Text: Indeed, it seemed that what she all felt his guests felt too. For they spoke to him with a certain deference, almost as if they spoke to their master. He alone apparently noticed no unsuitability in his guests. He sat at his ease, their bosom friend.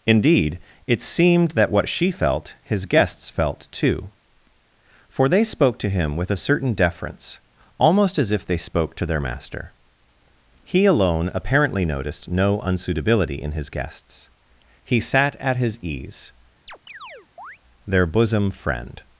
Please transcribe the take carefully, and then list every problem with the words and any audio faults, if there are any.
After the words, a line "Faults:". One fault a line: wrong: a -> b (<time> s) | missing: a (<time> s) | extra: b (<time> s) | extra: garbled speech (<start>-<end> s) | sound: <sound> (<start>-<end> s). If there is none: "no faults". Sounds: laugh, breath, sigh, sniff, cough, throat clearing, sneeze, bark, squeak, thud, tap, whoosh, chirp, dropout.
Indeed, it seemed that what she felt his guests felt too. For they spoke to him with a certain deference, almost as if they spoke to their master. He alone apparently noticed no unsuitability in his guests. He sat at his ease, their bosom friend.
Faults:
missing: all (2.1 s)
sound: chirp (16.7-17.6 s)